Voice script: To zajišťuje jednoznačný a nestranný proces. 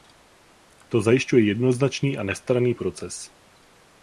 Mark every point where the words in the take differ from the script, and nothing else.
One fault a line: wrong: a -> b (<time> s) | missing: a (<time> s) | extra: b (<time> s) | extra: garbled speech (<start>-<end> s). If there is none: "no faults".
no faults